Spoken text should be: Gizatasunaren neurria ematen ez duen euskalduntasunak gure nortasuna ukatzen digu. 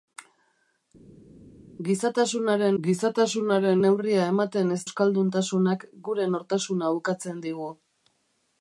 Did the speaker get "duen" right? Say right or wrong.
wrong